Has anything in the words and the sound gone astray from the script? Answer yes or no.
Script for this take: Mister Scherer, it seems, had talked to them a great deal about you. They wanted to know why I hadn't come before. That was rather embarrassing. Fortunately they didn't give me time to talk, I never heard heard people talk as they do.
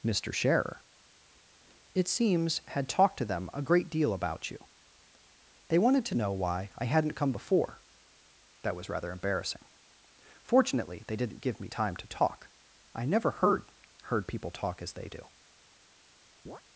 yes